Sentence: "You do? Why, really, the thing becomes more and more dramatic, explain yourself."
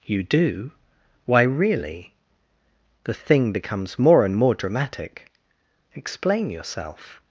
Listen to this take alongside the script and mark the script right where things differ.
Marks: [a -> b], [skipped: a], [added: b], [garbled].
"You do? Why, really, the thing becomes more and more dramatic, explain yourself."